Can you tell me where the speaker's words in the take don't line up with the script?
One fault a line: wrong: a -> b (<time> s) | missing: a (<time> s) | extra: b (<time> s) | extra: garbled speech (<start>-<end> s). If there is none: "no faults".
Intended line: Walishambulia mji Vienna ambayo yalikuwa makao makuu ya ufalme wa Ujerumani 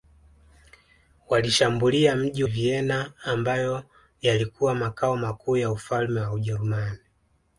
no faults